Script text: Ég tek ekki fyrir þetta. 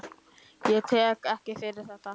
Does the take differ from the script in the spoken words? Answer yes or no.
no